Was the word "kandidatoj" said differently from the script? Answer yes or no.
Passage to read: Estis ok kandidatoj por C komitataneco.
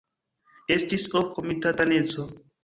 yes